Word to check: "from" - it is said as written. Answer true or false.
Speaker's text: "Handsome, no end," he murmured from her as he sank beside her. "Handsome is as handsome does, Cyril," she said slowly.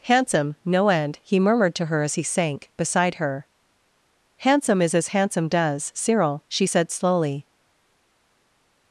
false